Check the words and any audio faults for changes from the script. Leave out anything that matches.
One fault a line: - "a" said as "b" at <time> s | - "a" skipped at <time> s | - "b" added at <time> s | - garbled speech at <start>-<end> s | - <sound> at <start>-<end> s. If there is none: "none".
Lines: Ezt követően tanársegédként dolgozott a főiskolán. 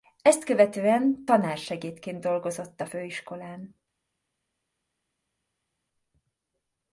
none